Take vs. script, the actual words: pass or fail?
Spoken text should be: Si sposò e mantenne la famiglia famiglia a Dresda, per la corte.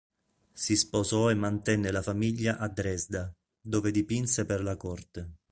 fail